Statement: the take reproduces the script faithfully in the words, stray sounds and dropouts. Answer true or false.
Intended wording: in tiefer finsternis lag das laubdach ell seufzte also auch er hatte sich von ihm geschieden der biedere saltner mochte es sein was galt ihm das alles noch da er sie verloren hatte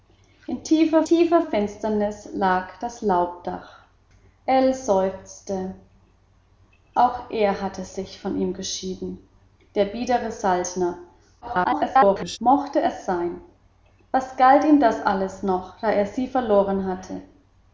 false